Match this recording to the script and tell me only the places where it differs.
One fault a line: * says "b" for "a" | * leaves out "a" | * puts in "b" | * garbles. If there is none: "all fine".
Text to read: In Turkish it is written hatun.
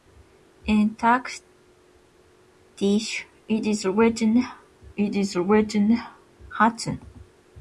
* puts in "it is written"